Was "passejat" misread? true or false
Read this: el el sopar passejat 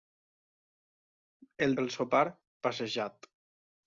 false